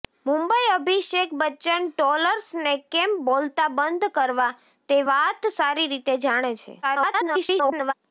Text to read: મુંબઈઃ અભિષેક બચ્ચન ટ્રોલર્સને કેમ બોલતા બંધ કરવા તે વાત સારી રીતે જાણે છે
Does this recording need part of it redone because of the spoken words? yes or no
yes